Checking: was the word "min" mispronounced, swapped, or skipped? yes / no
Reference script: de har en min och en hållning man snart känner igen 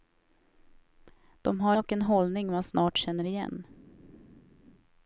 yes